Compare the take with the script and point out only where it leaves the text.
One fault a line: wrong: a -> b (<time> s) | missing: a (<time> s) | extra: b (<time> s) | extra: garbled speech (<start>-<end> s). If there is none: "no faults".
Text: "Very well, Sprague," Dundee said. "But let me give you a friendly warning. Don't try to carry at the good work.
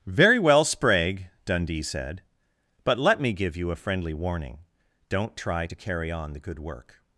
wrong: at -> on (6.1 s)